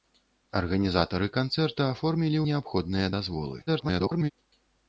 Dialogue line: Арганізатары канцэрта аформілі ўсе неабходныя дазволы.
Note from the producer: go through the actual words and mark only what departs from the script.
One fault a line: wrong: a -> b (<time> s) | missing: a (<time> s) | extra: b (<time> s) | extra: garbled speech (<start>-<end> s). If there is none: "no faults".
missing: ўсе (2.4 s)
extra: garbled speech (3.7-4.3 s)